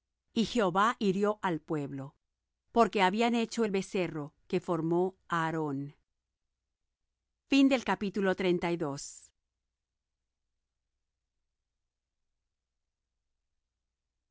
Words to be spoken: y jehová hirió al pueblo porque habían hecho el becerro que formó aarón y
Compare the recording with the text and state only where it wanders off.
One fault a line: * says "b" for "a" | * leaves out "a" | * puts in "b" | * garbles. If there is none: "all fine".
all fine